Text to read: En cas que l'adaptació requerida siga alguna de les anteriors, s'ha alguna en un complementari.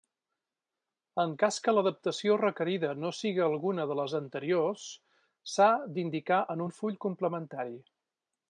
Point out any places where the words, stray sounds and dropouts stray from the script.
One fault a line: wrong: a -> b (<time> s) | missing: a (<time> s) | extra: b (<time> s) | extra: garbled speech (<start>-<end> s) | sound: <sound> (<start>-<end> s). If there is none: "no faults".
extra: no (3.0 s)
wrong: alguna -> d'indicar (6.0 s)
extra: full (6.8 s)